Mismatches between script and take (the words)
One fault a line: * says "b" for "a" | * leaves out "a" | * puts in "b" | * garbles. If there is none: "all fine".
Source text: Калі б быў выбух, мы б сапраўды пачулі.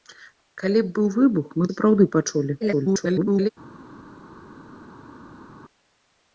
* leaves out "б"
* garbles